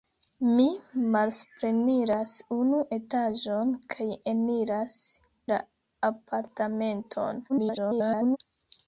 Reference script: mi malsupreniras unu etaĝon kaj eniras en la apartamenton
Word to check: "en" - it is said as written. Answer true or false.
false